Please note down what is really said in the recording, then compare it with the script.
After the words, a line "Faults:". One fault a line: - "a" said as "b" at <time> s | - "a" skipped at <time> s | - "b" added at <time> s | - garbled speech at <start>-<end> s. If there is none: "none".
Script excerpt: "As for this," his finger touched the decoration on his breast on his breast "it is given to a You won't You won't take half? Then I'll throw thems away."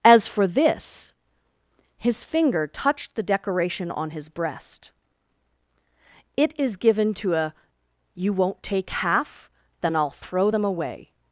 "As for this," his finger touched the decoration on his breast "it is given to a You won't take half? Then I'll throw them away."
Faults:
- "on his breast" skipped at 4.9 s
- "You won't" skipped at 8.6 s
- "thems" said as "them" at 10.5 s